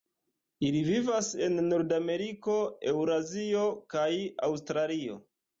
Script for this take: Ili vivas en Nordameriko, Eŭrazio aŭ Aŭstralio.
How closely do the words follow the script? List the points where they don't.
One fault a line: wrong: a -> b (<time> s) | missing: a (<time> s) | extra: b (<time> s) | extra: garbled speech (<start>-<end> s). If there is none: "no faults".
wrong: aŭ -> kaj (4.0 s)